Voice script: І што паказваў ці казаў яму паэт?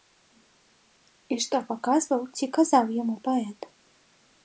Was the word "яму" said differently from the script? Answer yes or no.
no